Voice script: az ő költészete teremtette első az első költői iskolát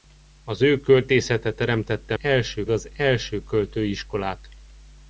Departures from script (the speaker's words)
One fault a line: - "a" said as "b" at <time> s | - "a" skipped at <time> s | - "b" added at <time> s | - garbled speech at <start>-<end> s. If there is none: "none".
none